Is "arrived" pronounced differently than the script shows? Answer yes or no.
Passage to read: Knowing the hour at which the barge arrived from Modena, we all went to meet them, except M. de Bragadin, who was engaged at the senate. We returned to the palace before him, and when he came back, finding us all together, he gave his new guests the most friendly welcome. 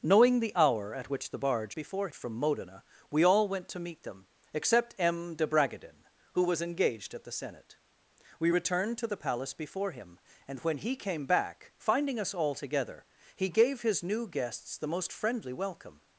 yes